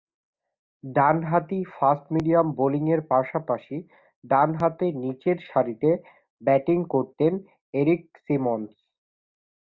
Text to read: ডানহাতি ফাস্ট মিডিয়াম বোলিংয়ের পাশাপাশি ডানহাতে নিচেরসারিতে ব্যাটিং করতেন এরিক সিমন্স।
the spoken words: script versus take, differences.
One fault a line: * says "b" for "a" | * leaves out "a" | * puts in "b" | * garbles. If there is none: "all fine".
all fine